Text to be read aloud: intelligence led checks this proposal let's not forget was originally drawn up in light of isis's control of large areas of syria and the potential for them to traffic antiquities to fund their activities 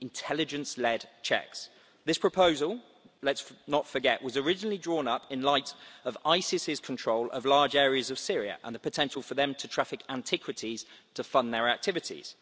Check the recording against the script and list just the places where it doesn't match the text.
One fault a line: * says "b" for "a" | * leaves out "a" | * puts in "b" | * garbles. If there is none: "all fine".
all fine